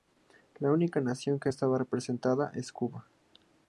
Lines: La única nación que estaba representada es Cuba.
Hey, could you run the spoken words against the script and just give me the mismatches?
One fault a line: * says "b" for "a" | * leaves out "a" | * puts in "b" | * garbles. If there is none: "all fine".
all fine